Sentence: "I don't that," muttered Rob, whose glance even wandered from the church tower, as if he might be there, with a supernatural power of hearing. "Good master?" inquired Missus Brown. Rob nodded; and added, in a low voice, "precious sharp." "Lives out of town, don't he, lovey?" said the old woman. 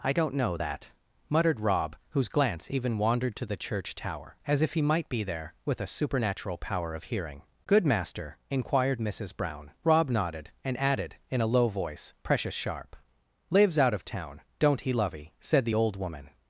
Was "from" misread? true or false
true